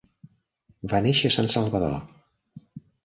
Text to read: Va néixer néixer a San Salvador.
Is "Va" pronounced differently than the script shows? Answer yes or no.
no